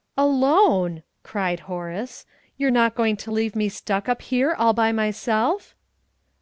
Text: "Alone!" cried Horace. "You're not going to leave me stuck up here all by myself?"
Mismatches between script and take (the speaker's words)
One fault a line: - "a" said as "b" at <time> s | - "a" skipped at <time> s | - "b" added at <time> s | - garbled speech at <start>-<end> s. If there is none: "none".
none